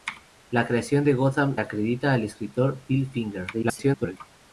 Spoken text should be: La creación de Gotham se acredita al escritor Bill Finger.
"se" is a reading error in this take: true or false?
true